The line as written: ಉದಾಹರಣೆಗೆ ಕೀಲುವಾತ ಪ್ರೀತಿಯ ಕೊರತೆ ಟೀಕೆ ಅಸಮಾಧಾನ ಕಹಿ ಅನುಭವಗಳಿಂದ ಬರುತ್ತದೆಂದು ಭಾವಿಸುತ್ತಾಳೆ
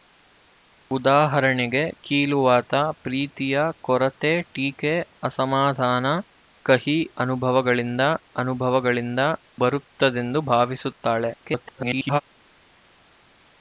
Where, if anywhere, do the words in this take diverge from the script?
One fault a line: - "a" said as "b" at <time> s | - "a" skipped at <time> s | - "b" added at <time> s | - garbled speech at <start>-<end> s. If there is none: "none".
- "ಅನುಭವಗಳಿಂದ" added at 8.4 s
- garbled speech at 11.4-12.2 s